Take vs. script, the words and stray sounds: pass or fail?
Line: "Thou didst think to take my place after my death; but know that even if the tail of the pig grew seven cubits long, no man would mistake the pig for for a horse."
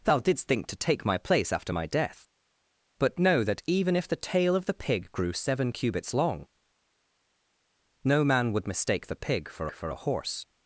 pass